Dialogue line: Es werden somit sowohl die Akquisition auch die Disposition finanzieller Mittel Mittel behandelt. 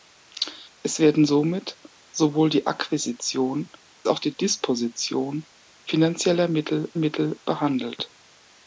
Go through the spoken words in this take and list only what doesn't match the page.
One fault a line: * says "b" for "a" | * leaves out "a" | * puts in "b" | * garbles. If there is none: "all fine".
all fine